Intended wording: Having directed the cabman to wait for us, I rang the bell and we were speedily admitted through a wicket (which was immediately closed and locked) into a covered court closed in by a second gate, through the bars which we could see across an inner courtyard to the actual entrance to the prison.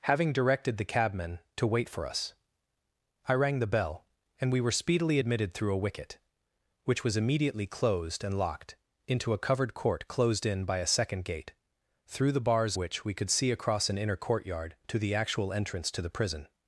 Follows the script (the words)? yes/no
yes